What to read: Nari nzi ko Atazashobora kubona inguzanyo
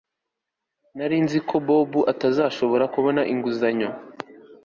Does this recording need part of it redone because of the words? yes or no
yes